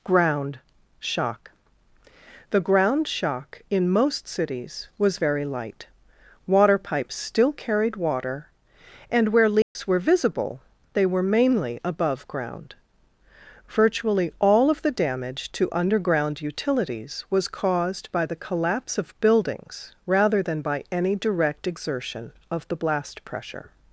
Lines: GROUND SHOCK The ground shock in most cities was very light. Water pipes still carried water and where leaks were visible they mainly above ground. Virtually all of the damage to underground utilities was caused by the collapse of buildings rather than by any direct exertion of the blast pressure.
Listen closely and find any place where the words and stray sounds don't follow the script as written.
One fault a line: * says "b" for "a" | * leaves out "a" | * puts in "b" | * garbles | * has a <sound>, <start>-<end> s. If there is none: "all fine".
* has a dropout, 9.6-9.8 s
* puts in "were"